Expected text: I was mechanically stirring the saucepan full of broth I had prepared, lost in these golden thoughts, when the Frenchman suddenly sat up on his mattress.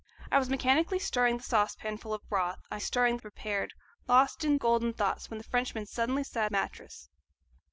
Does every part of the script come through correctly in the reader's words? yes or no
no